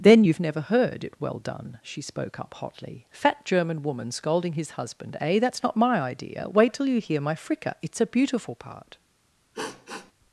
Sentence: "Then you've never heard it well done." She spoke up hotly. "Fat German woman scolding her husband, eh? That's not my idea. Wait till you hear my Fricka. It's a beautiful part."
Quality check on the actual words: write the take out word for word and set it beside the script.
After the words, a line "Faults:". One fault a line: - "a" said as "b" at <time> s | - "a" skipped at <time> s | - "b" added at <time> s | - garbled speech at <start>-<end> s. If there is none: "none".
"Then you've never heard it well done." She spoke up hotly. "Fat German woman scolding his husband, eh? That's not my idea. Wait till you hear my Fricka. It's a beautiful part."
Faults:
- "her" said as "his" at 4.5 s